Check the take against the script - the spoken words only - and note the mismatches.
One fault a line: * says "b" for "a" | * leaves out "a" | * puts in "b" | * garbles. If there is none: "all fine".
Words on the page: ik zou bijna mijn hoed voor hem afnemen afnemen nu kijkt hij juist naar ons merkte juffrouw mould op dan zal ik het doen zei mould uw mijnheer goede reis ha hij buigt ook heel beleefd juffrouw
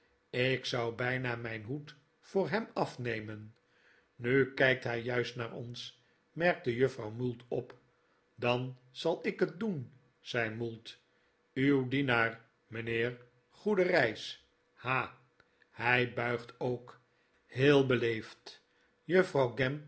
* leaves out "afnemen"
* puts in "dienaar"